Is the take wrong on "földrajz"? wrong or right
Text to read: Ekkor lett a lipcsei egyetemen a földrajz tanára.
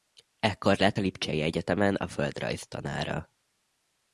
right